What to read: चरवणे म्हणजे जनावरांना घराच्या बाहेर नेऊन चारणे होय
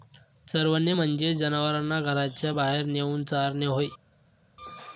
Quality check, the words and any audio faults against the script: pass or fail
pass